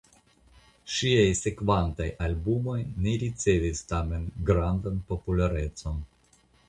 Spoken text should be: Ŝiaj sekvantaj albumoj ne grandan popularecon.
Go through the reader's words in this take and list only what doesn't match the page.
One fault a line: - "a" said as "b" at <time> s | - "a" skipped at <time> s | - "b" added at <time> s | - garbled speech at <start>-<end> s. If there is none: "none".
- "ricevis tamen" added at 3.2 s